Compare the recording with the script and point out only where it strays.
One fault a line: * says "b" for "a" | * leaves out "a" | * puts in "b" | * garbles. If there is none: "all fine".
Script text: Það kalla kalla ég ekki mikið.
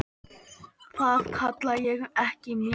* leaves out "kalla"